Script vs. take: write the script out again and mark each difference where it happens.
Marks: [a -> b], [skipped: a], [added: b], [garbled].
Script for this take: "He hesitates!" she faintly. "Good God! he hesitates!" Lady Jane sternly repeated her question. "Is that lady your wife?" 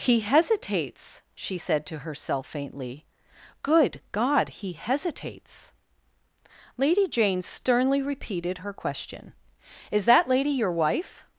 "He hesitates!" she [added: said to herself] faintly. "Good God! he hesitates!" Lady Jane sternly repeated her question. "Is that lady your wife?"